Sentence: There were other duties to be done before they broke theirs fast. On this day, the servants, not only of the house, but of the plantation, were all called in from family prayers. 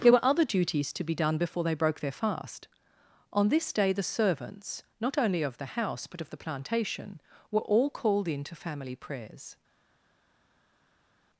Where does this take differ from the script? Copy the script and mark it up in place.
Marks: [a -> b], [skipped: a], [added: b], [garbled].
There were other duties to be done before they broke [theirs -> their] fast. On this day, the servants, not only of the house, but of the plantation, were all called in [from -> to] family prayers.